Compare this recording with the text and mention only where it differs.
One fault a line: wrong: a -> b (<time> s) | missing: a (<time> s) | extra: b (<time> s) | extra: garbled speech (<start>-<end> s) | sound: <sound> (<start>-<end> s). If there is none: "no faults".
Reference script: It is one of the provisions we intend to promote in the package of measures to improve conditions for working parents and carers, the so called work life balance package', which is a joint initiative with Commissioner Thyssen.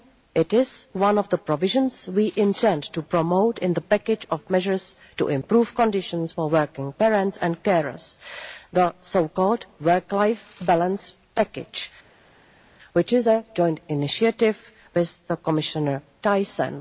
no faults